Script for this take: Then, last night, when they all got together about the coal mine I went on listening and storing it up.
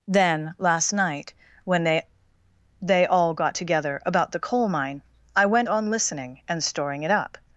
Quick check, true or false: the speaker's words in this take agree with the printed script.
false